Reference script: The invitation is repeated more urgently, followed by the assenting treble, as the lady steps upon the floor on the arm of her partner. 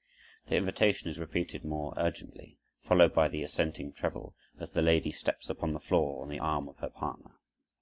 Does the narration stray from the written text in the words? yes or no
no